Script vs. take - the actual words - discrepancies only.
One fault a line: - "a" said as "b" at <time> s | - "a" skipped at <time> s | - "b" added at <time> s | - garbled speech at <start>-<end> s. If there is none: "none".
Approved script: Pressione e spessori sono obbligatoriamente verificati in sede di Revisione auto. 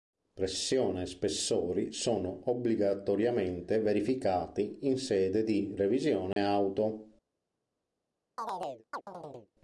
none